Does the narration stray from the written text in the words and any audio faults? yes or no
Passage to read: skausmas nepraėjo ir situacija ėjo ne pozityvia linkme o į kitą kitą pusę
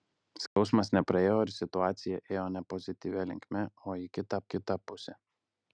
yes